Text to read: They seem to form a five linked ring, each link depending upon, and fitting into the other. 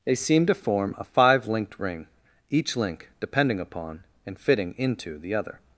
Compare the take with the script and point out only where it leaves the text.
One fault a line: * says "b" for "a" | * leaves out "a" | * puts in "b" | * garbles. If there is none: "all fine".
all fine